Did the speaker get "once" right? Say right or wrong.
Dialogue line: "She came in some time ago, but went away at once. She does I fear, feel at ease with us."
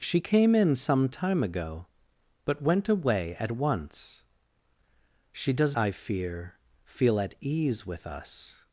right